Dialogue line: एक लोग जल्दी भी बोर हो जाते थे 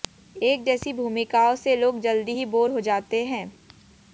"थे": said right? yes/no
no